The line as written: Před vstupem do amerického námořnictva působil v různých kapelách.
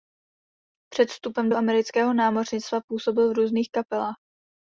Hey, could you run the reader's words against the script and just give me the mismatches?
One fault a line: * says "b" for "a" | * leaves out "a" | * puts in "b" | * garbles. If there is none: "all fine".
all fine